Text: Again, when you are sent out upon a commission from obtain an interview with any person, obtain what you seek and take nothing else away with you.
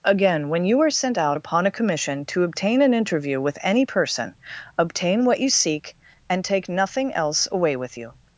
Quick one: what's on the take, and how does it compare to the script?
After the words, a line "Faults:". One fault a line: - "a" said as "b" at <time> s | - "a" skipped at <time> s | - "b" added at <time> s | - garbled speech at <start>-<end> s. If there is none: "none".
Again, when you are sent out upon a commission to obtain an interview with any person, obtain what you seek and take nothing else away with you.
Faults:
- "from" said as "to" at 2.3 s